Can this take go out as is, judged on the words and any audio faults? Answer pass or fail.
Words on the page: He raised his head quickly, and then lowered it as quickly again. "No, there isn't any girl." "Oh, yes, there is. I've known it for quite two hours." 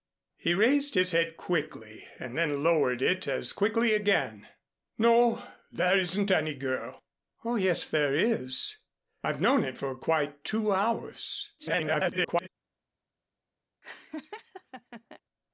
fail